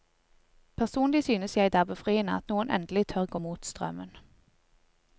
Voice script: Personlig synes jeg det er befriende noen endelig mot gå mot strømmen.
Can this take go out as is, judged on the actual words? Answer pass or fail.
fail